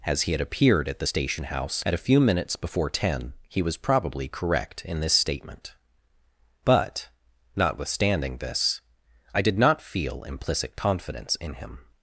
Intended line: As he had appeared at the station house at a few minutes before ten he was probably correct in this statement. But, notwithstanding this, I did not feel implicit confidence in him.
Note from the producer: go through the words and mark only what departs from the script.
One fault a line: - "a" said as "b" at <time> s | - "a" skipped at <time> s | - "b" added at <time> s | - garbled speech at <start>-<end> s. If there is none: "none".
none